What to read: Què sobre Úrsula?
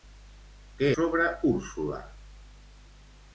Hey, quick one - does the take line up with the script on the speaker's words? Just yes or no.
yes